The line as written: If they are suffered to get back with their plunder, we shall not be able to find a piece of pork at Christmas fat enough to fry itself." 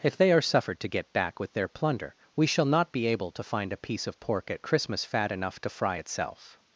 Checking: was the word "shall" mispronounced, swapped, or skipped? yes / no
no